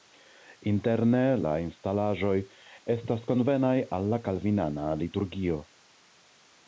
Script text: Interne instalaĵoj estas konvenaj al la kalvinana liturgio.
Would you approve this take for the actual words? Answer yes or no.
no